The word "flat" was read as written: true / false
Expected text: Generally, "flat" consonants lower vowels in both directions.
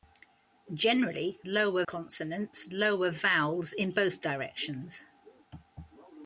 false